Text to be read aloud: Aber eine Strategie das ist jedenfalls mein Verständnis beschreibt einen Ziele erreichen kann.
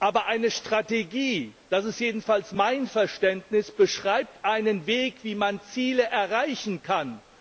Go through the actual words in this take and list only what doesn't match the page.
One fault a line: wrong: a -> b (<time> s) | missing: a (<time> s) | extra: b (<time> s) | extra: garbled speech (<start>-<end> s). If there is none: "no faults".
extra: Weg wie man (4.9 s)